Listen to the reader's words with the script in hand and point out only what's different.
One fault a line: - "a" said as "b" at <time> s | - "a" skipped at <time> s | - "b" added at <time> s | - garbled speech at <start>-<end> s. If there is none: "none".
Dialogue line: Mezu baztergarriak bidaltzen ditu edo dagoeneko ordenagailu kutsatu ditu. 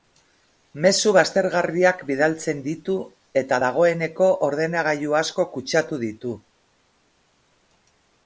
- "edo" said as "eta" at 3.4 s
- "asko" added at 5.2 s